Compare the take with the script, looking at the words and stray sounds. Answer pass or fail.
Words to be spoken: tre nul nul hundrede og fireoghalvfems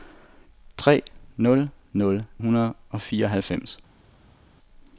pass